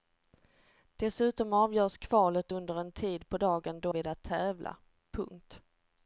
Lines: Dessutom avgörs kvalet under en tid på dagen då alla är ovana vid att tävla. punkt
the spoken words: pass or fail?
fail